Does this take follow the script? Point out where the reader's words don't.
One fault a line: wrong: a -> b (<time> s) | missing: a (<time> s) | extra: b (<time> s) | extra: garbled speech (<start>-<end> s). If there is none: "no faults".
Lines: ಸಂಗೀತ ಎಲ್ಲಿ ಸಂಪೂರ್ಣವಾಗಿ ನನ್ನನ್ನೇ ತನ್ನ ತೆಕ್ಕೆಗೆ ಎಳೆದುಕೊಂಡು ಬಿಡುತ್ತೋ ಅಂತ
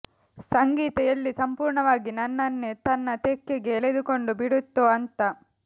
no faults